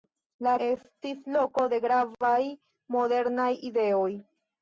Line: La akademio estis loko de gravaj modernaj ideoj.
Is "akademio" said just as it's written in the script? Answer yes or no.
no